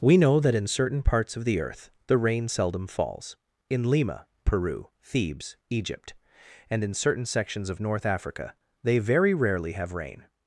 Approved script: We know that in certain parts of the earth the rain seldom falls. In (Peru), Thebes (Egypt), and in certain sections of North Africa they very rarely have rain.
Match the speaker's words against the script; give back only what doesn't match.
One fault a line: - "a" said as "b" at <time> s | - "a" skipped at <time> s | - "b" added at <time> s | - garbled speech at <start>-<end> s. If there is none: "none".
- "Lima" added at 3.9 s